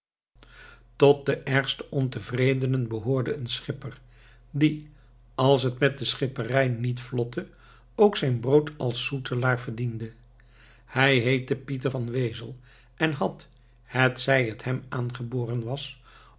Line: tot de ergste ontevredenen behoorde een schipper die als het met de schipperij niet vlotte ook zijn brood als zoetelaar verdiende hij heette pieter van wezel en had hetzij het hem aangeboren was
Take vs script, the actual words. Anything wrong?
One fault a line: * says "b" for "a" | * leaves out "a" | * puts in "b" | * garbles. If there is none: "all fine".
all fine